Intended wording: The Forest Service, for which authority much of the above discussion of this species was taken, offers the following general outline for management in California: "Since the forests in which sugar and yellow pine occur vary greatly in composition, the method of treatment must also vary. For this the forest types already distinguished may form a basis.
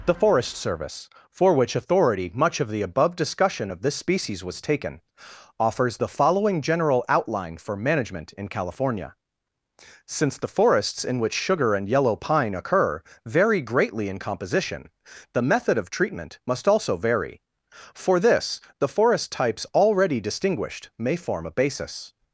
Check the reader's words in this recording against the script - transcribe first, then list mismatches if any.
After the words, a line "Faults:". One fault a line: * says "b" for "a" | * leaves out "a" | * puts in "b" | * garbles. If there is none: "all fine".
The Forest Service, for which authority much of the above discussion of this species was taken, offers the following general outline for management in California: "Since the forests in which sugar and yellow pine occur vary greatly in composition, the method of treatment must also vary. For this the forest types already distinguished may form a basis.
Faults:
all fine